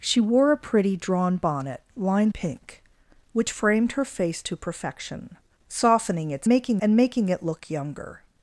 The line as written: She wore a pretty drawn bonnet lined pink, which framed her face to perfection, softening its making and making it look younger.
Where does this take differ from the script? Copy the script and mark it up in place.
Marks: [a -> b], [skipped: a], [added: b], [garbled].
She wore a pretty drawn bonnet lined pink, which framed her face to perfection, softening its making and making it look younger.